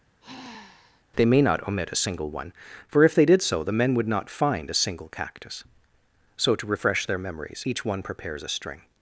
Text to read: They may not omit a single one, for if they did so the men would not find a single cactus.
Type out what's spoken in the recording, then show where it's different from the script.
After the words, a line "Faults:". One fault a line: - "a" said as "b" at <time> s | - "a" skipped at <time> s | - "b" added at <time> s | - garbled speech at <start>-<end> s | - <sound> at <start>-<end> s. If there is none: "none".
They may not omit a single one, for if they did so the men would not find a single cactus. So to refresh their memories each one prepares a string
Faults:
- sigh at 0.2-1.0 s
- "So to refresh their memories each one prepares a string" added at 6.4 s